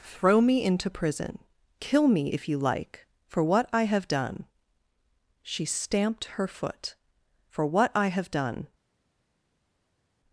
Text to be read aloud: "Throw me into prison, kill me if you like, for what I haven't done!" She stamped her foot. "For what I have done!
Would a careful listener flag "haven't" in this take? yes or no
yes